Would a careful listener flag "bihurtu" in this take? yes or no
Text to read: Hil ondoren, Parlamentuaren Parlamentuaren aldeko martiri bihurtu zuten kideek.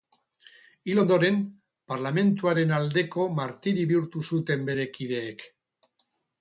no